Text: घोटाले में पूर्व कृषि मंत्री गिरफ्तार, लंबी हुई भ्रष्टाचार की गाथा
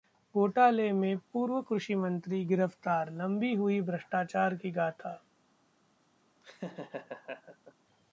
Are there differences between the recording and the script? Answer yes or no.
no